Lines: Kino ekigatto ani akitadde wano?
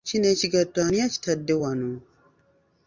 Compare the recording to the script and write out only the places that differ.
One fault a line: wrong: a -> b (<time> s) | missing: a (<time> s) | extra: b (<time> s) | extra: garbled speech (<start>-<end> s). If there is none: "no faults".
no faults